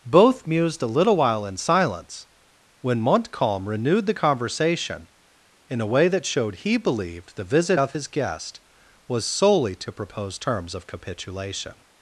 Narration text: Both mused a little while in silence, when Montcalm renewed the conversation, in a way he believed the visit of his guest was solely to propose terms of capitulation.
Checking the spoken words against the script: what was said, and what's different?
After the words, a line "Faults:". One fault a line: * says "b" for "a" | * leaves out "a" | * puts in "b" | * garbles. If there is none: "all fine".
Both mused a little while in silence, when Montcalm renewed the conversation, in a way that showed he believed the visit of his guest was solely to propose terms of capitulation.
Faults:
* puts in "that showed"